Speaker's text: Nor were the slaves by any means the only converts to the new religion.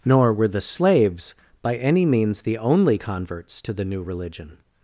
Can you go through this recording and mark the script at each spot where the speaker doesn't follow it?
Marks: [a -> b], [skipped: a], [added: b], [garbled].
Nor were the slaves by any means the only converts to the new religion.